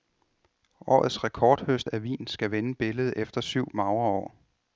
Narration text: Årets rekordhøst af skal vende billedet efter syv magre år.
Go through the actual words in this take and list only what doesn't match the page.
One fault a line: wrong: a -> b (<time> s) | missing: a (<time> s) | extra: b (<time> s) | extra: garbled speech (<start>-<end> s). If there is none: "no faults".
extra: vin (2.0 s)